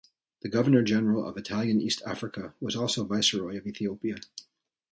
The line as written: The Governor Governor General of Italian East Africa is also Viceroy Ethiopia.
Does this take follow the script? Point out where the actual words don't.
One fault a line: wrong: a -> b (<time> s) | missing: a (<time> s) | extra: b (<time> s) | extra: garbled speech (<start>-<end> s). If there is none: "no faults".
missing: Governor (0.8 s)
wrong: is -> was (2.6 s)
extra: of (3.6 s)